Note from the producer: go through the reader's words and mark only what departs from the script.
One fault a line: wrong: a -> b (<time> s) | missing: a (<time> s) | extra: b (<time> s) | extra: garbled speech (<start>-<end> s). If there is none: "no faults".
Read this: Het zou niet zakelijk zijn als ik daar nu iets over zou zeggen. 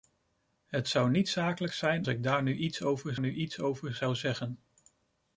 missing: als (2.1 s)
extra: nu iets over (3.2 s)